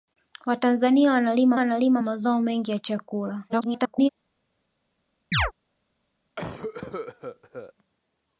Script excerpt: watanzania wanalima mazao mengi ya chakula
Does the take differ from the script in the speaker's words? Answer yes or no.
yes